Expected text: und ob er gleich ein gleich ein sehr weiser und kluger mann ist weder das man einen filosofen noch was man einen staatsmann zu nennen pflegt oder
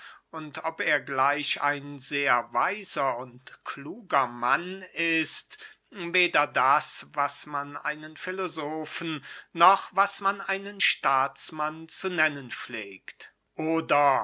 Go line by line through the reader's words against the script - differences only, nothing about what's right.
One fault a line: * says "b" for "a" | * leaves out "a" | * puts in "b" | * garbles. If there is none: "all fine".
* leaves out "gleich ein"
* puts in "was"